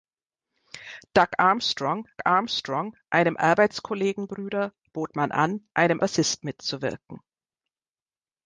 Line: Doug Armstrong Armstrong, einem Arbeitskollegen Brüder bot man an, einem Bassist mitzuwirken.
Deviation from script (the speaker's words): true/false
false